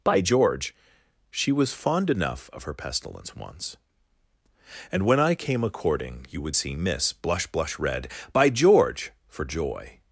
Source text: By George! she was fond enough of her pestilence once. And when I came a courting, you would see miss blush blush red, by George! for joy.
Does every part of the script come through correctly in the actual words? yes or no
yes